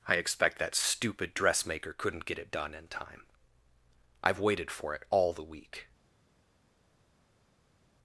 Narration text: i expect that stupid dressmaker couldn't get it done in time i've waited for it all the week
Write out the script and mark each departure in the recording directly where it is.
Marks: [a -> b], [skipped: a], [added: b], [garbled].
i expect that stupid dressmaker couldn't get it done in time i've waited for it all the week